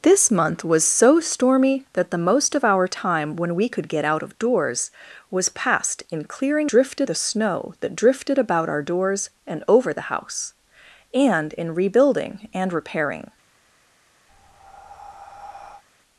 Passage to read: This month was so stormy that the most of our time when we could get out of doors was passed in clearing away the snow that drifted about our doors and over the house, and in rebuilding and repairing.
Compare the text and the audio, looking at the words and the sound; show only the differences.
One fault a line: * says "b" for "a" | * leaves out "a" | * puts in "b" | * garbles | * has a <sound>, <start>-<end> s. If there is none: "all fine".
* says "drifted" for "away"
* has a breath, 14.3-15.8 s